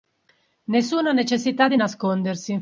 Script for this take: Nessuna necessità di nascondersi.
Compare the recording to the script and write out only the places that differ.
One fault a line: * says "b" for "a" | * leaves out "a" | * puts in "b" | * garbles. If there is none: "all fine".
all fine